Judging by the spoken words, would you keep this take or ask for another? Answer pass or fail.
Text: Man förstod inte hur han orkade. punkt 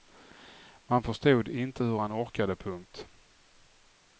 pass